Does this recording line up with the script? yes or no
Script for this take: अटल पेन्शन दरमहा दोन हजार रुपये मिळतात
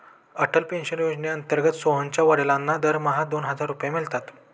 no